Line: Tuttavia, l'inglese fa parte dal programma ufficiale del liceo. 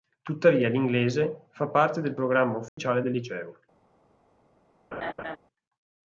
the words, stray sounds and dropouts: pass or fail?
fail